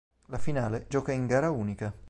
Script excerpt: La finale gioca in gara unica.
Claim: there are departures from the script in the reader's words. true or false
false